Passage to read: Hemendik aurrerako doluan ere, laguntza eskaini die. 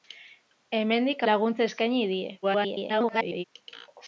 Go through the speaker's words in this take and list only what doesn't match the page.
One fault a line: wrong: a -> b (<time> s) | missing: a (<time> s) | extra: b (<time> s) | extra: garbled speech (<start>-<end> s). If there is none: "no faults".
missing: aurrerako doluan ere (1.2 s)
extra: garbled speech (2.4-3.4 s)